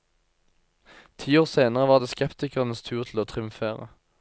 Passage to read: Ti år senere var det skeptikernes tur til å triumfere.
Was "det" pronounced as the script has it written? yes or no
yes